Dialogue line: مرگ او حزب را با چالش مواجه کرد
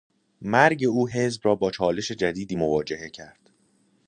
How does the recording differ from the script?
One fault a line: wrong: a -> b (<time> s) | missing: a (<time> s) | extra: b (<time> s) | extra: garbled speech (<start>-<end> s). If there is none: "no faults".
extra: جدیدی (2.1 s)